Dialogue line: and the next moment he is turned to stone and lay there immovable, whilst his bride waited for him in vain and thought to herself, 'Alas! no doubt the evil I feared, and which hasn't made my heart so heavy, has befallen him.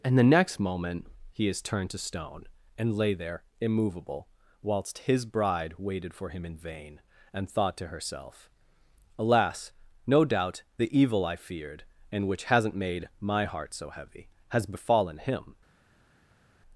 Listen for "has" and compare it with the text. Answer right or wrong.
right